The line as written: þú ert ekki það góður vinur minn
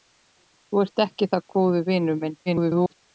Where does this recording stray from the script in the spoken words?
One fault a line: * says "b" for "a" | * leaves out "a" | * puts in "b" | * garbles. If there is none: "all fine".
* garbles